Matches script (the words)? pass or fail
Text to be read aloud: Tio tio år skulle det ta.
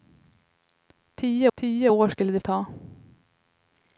pass